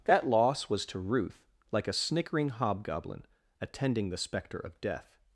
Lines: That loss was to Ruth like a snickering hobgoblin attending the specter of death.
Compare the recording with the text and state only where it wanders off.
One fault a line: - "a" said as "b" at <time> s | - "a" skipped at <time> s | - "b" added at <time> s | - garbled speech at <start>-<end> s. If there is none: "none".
none